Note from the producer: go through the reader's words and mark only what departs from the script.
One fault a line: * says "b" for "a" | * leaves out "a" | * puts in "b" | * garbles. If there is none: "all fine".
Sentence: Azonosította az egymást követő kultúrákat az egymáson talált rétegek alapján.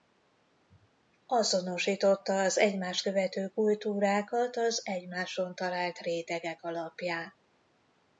all fine